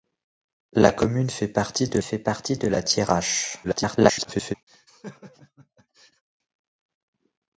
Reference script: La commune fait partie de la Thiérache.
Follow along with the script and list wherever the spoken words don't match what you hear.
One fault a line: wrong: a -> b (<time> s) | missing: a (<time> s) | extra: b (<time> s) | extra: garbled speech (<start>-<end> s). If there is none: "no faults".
extra: fait partie de (2.0 s)
extra: garbled speech (3.6-4.6 s)